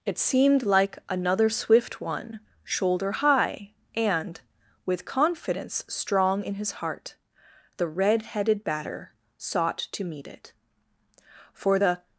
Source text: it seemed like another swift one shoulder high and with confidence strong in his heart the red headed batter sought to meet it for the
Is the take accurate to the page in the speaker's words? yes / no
yes